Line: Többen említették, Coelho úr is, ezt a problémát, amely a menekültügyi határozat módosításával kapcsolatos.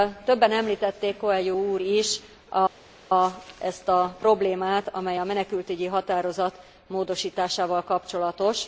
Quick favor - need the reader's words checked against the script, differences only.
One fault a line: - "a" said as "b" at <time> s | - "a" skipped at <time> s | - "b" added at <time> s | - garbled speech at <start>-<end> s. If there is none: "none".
none